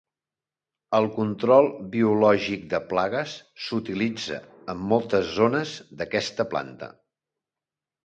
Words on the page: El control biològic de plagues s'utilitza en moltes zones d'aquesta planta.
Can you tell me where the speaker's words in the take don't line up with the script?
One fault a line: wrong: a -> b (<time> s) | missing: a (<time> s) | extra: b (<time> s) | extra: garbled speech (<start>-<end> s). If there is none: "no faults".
no faults